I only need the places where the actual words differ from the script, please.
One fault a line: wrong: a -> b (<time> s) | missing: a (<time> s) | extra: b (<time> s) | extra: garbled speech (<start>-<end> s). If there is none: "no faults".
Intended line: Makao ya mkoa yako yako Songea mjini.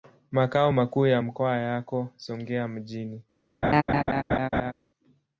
extra: makuu (0.7 s)
missing: yako (2.1 s)